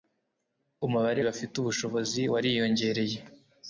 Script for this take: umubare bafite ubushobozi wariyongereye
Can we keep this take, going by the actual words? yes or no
yes